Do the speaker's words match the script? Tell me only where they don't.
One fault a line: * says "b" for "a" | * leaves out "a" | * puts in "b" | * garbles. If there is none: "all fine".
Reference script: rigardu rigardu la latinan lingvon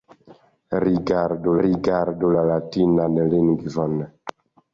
all fine